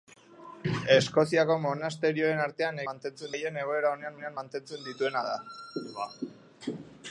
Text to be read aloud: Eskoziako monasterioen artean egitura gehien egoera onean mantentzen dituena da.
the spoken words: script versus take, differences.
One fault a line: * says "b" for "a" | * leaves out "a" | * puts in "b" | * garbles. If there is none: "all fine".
* says "mantentzen" for "egitura"
* puts in "onean"